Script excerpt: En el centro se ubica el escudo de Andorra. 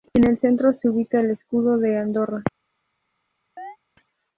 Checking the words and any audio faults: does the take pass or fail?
fail